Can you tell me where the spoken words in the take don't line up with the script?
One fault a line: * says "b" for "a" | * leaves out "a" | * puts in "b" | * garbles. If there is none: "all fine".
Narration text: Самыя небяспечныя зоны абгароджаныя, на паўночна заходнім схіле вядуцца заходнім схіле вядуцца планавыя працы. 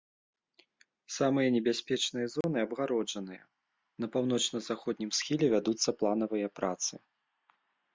* leaves out "заходнім схіле вядуцца"